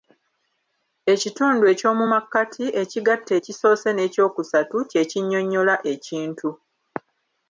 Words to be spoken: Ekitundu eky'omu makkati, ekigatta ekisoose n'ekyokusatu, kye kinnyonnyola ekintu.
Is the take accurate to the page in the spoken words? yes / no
yes